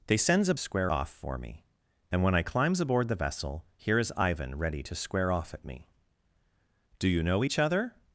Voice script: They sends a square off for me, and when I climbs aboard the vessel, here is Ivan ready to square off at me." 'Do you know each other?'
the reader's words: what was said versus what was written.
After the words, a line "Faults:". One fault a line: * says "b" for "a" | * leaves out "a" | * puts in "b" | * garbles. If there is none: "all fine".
They sends a square off for me, and when I climbs aboard the vessel, here is Ivan ready to square off at me." 'Do you know each other?'
Faults:
all fine